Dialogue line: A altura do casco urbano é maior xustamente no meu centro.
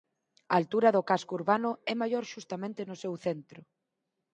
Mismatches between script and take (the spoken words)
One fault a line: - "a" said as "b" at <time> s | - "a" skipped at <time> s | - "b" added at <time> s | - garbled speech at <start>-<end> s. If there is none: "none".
- "meu" said as "seu" at 3.0 s